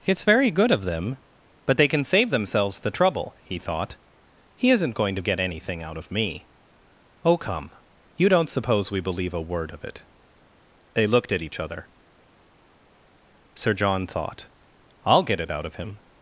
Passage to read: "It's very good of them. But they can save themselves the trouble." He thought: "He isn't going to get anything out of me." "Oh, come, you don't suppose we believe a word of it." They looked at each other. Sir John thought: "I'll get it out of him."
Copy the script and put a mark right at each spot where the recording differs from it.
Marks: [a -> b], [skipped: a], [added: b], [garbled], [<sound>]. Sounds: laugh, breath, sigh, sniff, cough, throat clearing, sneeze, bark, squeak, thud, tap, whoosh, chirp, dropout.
"It's very good of them. But they can save themselves the trouble." He thought: "He isn't going to get anything out of me." "Oh, come, you don't suppose we believe a word of it." They looked at each other. Sir John thought: "I'll get it out of him."